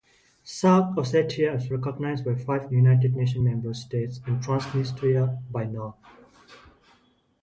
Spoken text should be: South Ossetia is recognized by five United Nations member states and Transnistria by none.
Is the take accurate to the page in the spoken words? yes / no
yes